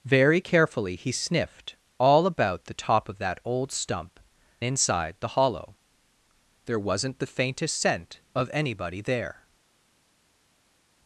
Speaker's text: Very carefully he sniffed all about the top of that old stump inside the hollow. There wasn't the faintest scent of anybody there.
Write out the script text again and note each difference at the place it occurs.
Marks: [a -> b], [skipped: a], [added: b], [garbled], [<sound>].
Very carefully he sniffed all about the top of that old stump inside the hollow. There wasn't the faintest scent of anybody there.